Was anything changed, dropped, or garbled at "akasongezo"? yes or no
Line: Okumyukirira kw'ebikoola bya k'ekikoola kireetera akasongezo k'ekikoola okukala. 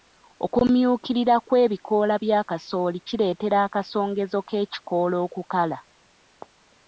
no